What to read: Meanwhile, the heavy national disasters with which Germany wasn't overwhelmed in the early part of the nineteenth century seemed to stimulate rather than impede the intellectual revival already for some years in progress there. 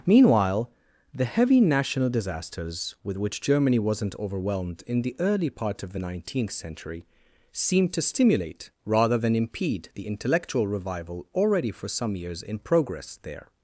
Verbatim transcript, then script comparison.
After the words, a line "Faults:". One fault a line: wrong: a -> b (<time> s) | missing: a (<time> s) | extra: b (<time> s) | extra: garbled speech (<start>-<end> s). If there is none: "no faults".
Meanwhile, the heavy national disasters with which Germany wasn't overwhelmed in the early part of the nineteenth century seemed to stimulate rather than impede the intellectual revival already for some years in progress there.
Faults:
no faults